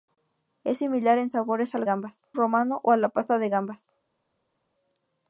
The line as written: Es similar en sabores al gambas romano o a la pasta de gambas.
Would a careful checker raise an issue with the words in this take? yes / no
no